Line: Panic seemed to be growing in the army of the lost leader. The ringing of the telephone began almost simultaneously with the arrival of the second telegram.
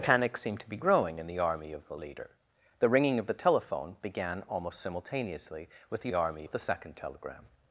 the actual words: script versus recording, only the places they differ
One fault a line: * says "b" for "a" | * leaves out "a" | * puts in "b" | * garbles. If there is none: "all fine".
* leaves out "lost"
* says "army" for "arrival"